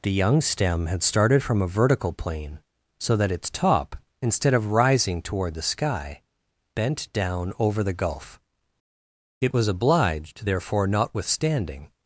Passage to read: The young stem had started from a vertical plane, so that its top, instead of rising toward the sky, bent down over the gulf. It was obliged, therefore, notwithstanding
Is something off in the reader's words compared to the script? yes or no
no